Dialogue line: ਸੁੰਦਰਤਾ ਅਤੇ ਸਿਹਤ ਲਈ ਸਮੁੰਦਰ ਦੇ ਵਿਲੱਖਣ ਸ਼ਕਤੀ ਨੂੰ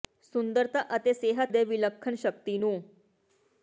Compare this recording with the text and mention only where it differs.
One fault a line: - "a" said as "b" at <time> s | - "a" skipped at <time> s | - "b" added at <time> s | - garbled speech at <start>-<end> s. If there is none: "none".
- "ਲਈ ਸਮੁੰਦਰ" skipped at 1.5 s